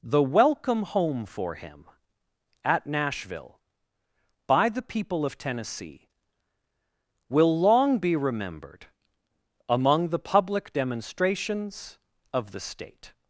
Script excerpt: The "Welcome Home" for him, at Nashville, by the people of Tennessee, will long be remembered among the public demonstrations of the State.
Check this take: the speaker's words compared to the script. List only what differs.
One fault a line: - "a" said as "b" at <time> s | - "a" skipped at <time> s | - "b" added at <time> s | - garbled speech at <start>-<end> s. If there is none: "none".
none